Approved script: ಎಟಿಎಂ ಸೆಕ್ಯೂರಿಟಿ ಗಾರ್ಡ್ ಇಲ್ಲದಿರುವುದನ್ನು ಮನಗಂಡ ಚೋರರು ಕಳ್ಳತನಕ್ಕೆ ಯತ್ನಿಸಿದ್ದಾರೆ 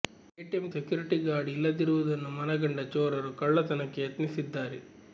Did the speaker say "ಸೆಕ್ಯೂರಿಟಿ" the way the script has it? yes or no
yes